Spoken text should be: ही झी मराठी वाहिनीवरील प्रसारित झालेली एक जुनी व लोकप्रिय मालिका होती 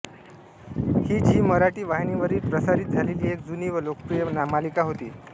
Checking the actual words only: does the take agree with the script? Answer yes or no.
yes